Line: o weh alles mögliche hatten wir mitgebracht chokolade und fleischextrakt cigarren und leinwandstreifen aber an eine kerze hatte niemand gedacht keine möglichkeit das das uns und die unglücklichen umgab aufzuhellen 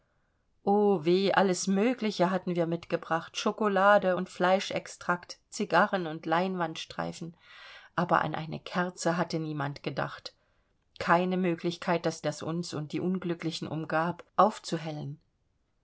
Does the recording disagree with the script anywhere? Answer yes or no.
no